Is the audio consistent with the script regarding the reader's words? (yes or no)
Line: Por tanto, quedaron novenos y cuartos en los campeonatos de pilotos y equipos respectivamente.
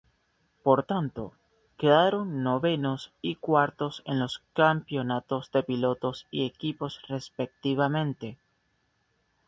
yes